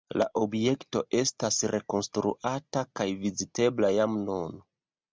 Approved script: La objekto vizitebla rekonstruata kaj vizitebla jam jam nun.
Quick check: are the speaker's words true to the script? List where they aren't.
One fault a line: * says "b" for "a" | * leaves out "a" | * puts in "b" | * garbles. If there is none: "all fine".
* says "estas" for "vizitebla"
* leaves out "jam"